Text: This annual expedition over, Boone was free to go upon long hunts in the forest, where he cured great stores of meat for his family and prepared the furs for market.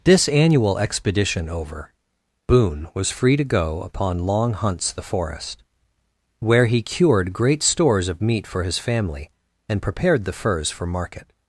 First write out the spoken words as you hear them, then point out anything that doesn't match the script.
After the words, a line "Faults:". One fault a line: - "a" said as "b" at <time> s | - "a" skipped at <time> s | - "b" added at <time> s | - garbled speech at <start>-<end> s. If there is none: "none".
This annual expedition over, Boone was free to go upon long hunts the forest, where he cured great stores of meat for his family and prepared the furs for market.
Faults:
- "in" skipped at 4.9 s